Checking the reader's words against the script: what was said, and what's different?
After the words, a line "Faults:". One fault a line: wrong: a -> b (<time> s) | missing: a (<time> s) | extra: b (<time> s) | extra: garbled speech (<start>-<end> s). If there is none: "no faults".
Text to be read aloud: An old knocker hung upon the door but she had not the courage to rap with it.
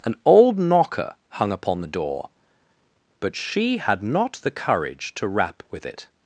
An old knocker hung upon the door but she had not the courage to rap with it.
Faults:
no faults